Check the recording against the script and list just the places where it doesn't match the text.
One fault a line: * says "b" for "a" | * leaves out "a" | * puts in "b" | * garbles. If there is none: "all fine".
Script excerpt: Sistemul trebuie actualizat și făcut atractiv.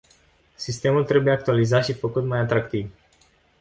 * puts in "mai"